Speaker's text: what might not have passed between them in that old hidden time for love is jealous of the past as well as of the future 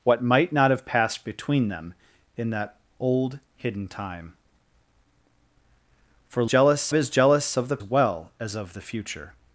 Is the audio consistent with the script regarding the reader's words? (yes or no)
no